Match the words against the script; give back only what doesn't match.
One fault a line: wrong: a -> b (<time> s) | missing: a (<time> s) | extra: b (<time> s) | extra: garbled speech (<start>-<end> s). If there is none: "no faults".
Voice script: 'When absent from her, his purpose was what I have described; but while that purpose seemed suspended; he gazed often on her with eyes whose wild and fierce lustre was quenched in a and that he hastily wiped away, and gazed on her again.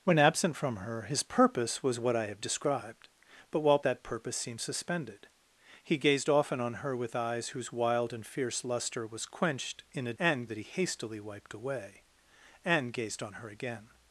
no faults